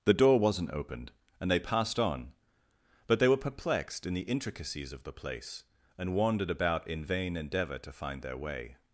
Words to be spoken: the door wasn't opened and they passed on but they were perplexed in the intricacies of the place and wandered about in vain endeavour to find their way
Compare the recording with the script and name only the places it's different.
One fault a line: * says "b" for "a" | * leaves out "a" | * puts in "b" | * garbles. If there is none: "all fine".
all fine